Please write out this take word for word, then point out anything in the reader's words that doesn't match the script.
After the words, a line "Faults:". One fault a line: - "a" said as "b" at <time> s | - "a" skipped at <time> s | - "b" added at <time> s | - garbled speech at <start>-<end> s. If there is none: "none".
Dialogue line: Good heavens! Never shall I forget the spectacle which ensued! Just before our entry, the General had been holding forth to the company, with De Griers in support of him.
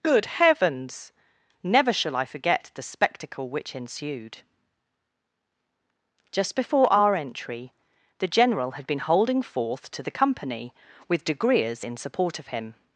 Good heavens! Never shall I forget the spectacle which ensued! Just before our entry, the General had been holding forth to the company, with De Griers in support of him.
Faults:
none